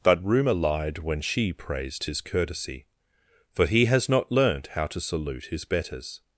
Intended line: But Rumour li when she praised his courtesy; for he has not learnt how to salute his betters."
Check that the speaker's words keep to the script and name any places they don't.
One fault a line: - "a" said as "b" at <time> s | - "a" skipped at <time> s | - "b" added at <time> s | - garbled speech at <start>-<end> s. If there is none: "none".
- "li" said as "lied" at 0.5 s